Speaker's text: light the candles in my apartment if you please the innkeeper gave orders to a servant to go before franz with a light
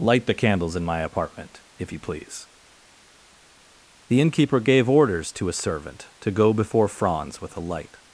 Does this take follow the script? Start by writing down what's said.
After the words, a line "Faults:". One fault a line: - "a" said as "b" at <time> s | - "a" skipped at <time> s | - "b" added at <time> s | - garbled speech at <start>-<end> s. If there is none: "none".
light the candles in my apartment if you please the innkeeper gave orders to a servant to go before franz with a light
Faults:
none